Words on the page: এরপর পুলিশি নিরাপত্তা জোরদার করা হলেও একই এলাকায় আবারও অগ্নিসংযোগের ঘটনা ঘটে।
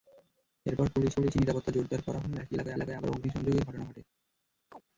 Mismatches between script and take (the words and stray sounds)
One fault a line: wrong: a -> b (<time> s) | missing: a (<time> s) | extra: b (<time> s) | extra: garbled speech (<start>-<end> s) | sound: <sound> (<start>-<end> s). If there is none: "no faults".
extra: পুলিশি (1.1 s)
extra: এলাকায় (2.8 s)
sound: chirp (4.7-4.8 s)